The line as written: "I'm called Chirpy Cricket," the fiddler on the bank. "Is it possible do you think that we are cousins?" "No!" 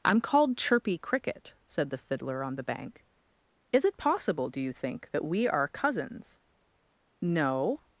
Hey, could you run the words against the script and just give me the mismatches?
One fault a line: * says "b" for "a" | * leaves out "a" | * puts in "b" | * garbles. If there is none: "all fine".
* puts in "said"